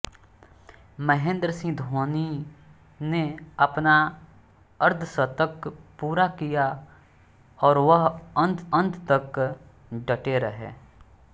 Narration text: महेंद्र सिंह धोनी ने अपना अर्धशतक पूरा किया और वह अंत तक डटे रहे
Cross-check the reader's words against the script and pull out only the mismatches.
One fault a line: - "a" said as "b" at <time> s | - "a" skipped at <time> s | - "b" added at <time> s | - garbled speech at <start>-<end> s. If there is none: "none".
- "अंत" added at 8.8 s